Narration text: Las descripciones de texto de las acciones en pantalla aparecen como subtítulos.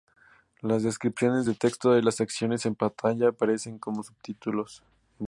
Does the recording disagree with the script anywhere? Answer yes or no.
no